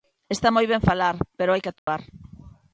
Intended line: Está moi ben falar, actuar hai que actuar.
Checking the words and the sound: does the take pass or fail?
fail